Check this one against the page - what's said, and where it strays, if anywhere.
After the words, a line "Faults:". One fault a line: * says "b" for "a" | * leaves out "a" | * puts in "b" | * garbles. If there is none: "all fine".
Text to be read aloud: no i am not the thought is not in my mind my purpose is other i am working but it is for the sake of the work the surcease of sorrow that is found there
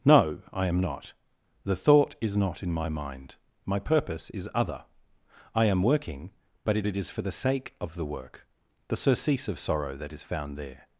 no i am not the thought is not in my mind my purpose is other i am working but it it is for the sake of the work the surcease of sorrow that is found there
Faults:
* puts in "it"